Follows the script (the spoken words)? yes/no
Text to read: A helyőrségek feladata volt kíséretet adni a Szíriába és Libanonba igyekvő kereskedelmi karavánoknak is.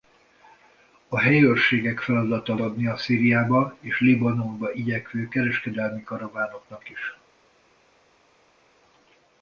no